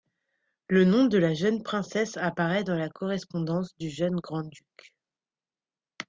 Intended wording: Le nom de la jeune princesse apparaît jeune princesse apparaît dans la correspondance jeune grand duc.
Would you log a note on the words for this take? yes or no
yes